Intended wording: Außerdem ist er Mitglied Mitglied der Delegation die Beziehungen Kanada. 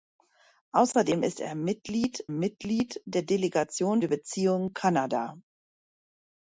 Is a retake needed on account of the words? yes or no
no